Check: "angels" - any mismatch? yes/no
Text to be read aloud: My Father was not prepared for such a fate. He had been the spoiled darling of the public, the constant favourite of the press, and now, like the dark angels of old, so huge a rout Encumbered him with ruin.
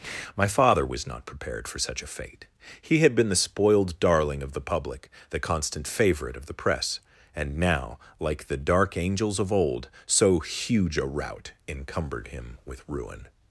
no